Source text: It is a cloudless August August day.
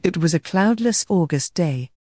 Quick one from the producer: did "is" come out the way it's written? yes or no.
no